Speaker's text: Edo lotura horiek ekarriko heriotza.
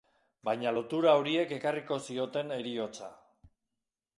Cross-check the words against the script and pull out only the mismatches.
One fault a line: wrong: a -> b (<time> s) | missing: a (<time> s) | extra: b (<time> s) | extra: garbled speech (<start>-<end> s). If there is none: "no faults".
wrong: Edo -> Baina (0.5 s)
extra: zioten (2.1 s)